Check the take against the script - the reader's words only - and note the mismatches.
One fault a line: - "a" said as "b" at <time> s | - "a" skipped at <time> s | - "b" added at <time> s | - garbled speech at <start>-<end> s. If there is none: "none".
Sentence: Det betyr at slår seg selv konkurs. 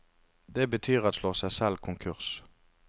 none